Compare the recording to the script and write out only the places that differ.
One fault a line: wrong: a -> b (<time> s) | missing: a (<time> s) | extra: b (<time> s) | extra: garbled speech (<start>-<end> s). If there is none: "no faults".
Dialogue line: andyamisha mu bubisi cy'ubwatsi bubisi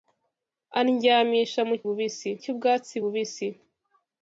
no faults